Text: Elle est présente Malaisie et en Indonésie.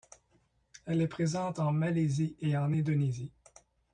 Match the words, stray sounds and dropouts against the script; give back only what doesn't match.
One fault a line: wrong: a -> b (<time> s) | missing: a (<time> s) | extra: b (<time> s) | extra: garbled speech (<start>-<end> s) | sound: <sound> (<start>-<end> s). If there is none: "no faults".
extra: en (1.6 s)